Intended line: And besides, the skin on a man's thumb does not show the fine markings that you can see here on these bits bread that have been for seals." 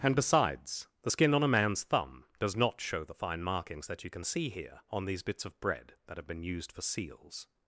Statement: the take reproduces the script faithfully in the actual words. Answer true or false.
false